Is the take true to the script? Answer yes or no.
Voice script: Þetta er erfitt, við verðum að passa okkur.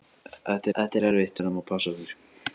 no